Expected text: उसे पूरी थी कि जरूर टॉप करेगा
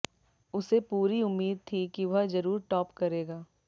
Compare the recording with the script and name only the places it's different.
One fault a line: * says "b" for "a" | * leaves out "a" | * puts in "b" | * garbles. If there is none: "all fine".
* puts in "उम्मीद"
* puts in "वह"